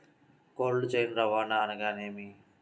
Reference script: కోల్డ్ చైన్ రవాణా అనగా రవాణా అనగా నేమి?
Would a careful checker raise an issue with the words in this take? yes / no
yes